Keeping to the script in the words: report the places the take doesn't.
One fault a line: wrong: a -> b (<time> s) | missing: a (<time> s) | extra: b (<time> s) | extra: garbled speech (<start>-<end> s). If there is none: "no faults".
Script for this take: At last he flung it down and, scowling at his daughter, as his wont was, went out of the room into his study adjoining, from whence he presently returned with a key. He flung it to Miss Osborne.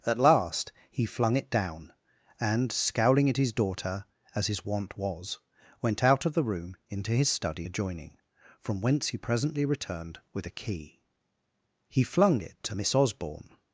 no faults